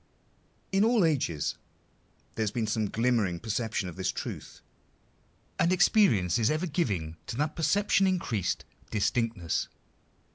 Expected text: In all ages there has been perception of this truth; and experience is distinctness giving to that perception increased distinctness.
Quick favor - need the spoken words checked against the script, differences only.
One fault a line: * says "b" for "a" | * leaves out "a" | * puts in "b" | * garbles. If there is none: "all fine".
* puts in "some glimmering"
* says "ever" for "distinctness"